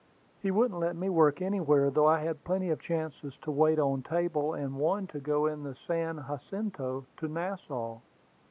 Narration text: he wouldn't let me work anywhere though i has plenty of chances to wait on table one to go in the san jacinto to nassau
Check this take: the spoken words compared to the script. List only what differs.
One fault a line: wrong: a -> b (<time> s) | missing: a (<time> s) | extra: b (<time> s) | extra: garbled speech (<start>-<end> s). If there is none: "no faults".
wrong: has -> had (2.2 s)
extra: and (4.5 s)